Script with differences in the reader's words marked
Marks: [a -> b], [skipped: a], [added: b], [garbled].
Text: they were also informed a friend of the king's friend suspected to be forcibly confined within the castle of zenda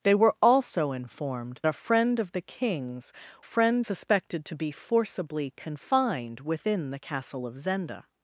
they were also informed a friend of the king's friend suspected to be forcibly confined within the castle of zenda